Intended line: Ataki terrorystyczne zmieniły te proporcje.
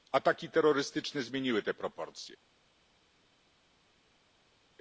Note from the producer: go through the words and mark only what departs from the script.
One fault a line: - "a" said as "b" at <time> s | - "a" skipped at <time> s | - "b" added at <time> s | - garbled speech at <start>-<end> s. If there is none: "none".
none